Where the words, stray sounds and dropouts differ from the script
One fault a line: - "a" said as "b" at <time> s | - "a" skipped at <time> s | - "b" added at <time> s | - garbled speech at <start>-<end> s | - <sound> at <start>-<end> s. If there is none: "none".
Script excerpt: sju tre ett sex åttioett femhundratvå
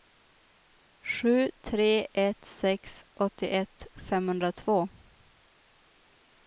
none